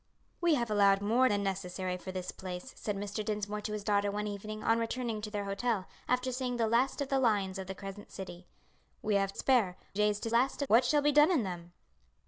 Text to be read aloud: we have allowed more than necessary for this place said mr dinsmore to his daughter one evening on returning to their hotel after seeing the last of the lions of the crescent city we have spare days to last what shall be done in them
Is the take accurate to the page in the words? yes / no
yes